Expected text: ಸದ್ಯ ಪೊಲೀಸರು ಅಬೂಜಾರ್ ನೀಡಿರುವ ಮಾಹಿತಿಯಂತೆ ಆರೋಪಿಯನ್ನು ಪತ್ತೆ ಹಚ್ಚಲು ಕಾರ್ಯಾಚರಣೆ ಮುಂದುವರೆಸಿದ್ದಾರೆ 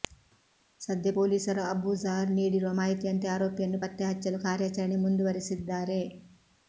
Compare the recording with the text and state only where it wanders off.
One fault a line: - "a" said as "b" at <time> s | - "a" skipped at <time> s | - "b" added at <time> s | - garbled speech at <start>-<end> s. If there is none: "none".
none